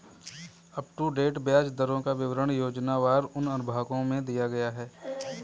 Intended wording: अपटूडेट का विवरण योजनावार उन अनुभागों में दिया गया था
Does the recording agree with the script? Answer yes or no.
no